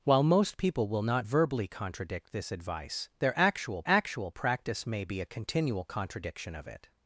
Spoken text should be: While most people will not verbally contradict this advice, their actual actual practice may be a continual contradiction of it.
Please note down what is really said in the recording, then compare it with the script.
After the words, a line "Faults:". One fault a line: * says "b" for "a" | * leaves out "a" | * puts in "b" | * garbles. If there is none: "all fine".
While most people will not verbally contradict this advice, their actual actual practice may be a continual contradiction of it.
Faults:
all fine